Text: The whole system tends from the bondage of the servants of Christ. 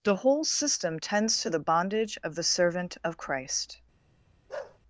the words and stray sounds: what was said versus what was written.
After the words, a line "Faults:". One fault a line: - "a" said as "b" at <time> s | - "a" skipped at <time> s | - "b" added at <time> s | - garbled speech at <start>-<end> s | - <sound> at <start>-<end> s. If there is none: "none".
The whole system tends to the bondage of the servant of Christ.
Faults:
- "from" said as "to" at 1.4 s
- "servants" said as "servant" at 2.4 s
- bark at 4.5-4.8 s